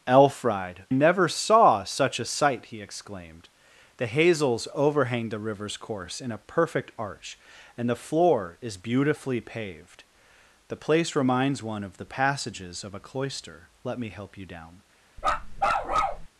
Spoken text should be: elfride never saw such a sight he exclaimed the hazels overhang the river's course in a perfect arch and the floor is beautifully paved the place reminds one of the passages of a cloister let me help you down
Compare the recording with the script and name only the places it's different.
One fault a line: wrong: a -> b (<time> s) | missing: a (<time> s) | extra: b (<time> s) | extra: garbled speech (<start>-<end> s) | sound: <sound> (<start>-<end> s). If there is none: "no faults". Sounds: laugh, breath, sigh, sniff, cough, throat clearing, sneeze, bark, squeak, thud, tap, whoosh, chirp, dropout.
sound: bark (15.2-16.3 s)